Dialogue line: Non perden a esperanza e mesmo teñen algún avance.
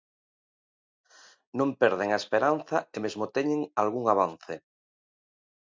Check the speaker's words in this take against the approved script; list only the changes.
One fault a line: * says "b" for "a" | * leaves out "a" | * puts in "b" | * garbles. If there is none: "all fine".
all fine